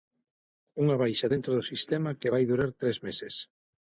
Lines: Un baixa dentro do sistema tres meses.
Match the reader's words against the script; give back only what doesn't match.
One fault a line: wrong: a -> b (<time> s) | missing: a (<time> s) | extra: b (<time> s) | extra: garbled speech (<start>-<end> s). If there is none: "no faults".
wrong: Un -> Unha (0.8 s)
extra: que vai durar (2.2 s)